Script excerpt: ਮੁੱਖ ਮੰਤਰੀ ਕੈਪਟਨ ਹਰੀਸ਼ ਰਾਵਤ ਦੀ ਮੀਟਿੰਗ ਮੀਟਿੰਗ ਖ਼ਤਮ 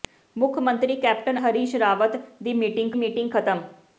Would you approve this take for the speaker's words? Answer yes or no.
yes